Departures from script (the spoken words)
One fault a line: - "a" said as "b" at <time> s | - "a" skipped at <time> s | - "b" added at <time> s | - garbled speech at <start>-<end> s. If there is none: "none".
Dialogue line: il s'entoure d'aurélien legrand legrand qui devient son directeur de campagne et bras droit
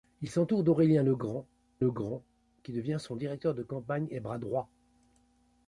none